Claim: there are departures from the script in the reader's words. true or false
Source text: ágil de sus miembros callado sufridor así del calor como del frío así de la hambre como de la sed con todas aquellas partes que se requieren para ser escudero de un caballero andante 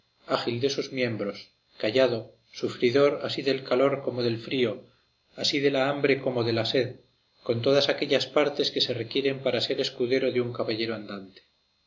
false